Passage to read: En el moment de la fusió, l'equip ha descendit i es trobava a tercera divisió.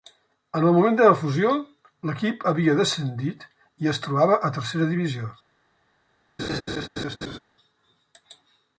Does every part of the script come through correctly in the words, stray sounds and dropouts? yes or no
no